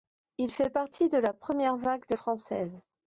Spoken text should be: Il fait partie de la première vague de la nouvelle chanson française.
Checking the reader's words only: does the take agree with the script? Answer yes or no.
no